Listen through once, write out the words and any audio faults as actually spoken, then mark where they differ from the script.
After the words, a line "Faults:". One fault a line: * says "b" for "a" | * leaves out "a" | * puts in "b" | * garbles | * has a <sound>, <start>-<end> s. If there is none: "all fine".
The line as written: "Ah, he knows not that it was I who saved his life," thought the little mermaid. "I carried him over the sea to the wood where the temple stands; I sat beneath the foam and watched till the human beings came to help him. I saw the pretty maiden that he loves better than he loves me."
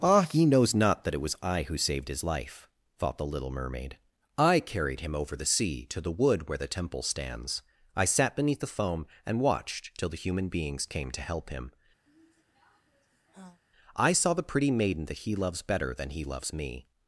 "Ah, he knows not that it was I who saved his life," thought the little mermaid. "I carried him over the sea to the wood where the temple stands; I sat beneath the foam and watched till the human beings came to help him. I saw the pretty maiden that he loves better than he loves me."
Faults:
* has a sigh, 12.1-13.6 s